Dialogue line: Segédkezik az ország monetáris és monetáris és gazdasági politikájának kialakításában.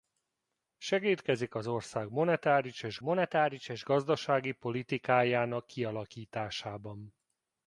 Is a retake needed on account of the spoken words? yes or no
no